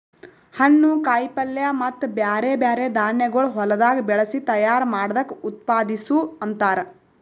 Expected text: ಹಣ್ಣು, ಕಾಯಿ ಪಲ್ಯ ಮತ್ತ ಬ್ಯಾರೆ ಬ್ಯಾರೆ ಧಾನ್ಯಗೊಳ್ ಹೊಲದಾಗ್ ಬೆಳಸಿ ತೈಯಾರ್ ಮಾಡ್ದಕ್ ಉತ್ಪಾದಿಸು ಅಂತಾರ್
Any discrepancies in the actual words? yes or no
no